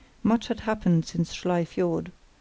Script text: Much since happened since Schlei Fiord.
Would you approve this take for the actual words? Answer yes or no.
no